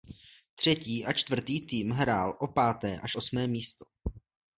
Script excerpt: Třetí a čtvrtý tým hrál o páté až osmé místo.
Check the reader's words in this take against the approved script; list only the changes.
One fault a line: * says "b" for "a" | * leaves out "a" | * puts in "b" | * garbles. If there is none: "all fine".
all fine